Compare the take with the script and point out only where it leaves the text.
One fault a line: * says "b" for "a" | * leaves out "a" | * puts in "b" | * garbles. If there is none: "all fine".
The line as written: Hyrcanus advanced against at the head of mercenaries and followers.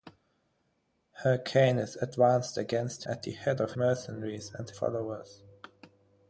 all fine